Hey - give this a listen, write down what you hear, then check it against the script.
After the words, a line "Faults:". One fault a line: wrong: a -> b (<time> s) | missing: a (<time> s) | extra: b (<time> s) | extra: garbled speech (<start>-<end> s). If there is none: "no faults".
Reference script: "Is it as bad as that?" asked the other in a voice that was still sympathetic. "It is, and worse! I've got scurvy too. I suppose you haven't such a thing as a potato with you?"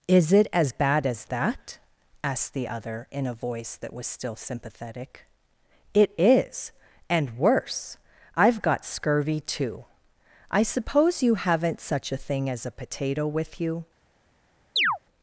"Is it as bad as that?" asked the other in a voice that was still sympathetic. "It is, and worse! I've got scurvy too. I suppose you haven't such a thing as a potato with you?"
Faults:
no faults